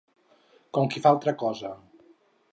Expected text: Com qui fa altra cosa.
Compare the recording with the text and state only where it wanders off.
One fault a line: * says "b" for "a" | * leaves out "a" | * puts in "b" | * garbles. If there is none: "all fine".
all fine